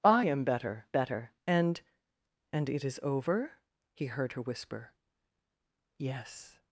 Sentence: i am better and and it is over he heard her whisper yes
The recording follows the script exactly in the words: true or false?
false